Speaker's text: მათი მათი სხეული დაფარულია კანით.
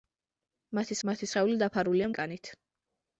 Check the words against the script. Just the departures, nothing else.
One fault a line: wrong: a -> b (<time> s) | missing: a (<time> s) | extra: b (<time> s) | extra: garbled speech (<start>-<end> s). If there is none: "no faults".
no faults